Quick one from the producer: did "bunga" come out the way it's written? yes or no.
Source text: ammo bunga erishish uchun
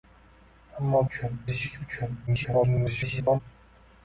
no